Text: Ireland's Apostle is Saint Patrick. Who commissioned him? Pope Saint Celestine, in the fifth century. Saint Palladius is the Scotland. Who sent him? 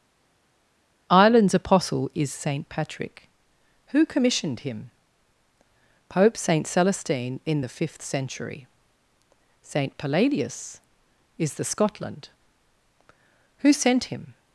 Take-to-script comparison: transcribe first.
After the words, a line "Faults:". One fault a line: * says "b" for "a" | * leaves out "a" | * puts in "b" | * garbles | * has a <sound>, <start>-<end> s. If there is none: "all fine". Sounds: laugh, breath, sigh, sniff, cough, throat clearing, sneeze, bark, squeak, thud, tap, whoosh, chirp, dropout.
Ireland's Apostle is Saint Patrick. Who commissioned him? Pope Saint Celestine, in the fifth century. Saint Palladius is the Scotland. Who sent him?
Faults:
all fine